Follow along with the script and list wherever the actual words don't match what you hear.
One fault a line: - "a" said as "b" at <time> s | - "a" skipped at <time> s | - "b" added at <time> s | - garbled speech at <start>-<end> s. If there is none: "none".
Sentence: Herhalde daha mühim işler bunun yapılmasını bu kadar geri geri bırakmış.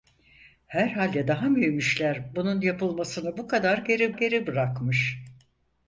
none